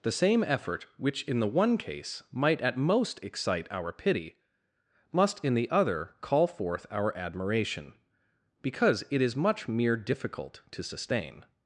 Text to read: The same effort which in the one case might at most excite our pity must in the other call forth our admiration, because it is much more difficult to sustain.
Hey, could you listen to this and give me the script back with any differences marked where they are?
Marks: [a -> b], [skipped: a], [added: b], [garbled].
The same effort which in the one case might at most excite our pity must in the other call forth our admiration, because it is much [more -> mere] difficult to sustain.